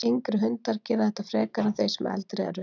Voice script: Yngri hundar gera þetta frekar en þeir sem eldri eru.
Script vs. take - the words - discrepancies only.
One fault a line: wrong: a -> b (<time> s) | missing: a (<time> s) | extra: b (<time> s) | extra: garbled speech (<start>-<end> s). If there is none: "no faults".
no faults